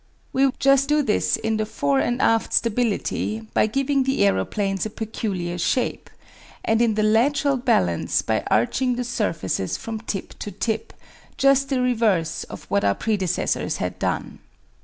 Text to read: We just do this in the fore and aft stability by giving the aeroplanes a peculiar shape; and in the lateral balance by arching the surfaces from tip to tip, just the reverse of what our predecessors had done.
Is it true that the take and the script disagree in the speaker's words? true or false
false